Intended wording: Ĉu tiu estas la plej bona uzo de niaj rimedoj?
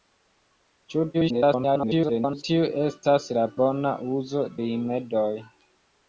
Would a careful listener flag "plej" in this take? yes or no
yes